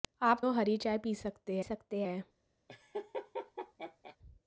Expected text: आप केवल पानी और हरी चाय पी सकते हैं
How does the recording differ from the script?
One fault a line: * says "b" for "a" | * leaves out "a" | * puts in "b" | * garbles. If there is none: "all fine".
* leaves out "केवल पानी"
* puts in "सकते"